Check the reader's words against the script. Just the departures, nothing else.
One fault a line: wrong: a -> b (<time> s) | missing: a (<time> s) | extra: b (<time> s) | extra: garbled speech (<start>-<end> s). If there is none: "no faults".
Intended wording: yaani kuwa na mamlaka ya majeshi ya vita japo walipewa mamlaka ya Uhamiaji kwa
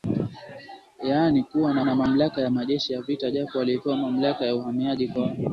extra: na (1.8 s)